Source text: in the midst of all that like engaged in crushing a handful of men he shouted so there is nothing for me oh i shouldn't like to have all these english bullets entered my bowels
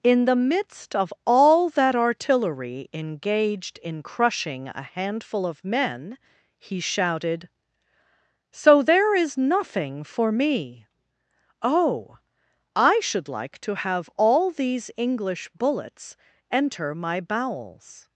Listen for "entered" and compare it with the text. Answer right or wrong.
wrong